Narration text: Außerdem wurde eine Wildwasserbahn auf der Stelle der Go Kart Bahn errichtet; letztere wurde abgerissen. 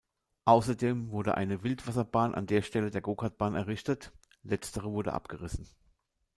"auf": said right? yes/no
no